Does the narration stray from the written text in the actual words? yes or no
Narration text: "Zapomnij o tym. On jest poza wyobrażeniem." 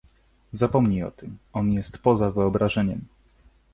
no